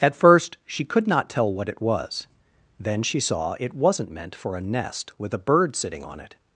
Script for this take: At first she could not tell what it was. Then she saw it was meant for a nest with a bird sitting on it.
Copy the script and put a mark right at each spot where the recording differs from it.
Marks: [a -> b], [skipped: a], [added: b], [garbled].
At first she could not tell what it was. Then she saw it [was -> wasn't] meant for a nest with a bird sitting on it.